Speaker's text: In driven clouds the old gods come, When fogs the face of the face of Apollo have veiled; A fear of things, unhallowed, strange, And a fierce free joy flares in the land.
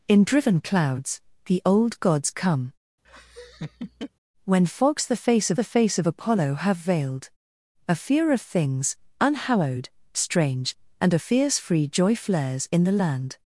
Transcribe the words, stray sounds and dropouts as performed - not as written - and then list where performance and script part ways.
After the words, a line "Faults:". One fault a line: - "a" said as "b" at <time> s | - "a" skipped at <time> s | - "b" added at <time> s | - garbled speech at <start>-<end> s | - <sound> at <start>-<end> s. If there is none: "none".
In driven clouds the old gods come, When fogs the face of the face of Apollo have veiled; A fear of things, unhallowed, strange, And a fierce free joy flares in the land.
Faults:
- laugh at 3.0-4.1 s